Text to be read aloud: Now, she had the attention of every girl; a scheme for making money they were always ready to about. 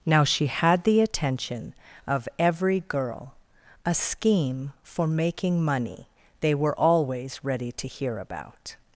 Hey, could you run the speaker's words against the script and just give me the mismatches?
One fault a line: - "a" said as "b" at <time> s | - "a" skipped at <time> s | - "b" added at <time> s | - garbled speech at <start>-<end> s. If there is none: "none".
- "hear" added at 7.9 s